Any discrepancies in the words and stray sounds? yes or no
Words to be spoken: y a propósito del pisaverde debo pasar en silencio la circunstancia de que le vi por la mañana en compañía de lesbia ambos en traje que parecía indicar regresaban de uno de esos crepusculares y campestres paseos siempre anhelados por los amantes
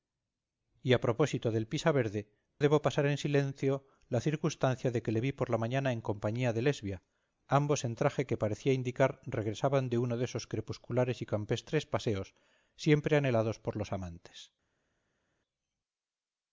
no